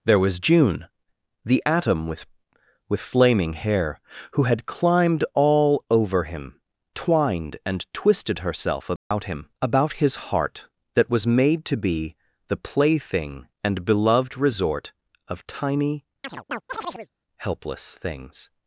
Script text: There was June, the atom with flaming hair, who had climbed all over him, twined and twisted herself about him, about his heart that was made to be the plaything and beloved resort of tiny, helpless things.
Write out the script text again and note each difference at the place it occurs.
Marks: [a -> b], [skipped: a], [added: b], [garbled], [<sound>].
There was June, the atom with [added: with] flaming hair, who had climbed all over him, twined and twisted herself about [dropout] him, about his heart that was made to be the plaything and beloved resort of tiny, [chirp] helpless things.